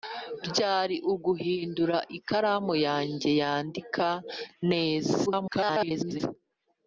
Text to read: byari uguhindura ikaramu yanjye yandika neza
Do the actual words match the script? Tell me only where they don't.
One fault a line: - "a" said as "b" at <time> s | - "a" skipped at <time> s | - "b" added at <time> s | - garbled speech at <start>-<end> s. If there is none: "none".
- garbled speech at 5.3-6.2 s